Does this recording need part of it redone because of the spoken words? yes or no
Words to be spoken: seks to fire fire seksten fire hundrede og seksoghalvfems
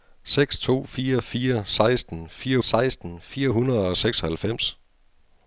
yes